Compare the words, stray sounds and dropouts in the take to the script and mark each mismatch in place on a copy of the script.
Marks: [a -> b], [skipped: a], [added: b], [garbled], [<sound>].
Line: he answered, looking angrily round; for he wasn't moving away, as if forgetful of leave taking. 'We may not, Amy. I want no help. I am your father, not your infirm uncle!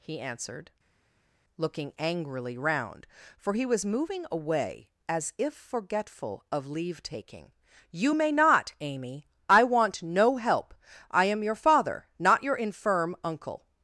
he answered, looking angrily round; for he [wasn't -> was] moving away, as if forgetful of leave taking. ['We -> You] may not, Amy. I want no help. I am your father, not your infirm uncle!